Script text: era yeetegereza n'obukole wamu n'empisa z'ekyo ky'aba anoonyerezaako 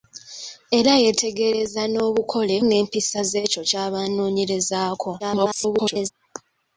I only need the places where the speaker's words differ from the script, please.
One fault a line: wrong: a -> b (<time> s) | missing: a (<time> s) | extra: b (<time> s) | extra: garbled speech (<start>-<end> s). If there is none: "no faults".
missing: wamu (2.5 s)
extra: garbled speech (5.2-6.1 s)